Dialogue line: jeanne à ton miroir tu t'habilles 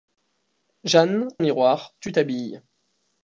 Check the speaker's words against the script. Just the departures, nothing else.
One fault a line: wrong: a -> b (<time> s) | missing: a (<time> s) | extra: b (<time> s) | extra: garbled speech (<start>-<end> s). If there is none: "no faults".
missing: à ton (1.3 s)